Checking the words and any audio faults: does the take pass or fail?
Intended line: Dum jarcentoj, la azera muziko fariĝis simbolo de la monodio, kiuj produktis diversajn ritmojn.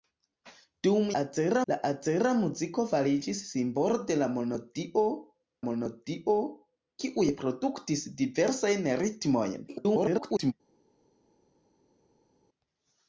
fail